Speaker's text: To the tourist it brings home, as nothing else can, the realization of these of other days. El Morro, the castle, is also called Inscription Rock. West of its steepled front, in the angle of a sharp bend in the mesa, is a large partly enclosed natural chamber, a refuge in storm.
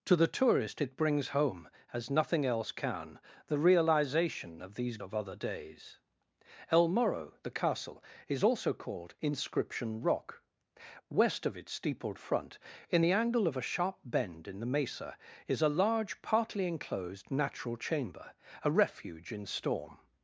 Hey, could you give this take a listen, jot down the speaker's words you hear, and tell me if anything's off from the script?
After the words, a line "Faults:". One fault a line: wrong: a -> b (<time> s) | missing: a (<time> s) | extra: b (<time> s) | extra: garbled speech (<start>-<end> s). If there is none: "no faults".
To the tourist it brings home, as nothing else can, the realization of these of other days. El Morro, the castle, is also called Inscription Rock. West of its steepled front, in the angle of a sharp bend in the mesa, is a large partly enclosed natural chamber, a refuge in storm.
Faults:
no faults